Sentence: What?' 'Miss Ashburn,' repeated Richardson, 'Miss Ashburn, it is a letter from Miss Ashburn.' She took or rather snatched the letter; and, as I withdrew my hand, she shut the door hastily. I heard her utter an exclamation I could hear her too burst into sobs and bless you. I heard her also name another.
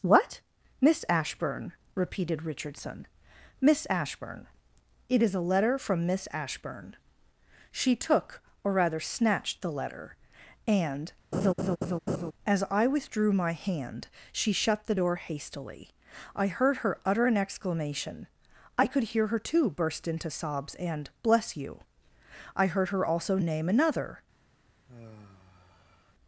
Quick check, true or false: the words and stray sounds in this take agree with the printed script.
false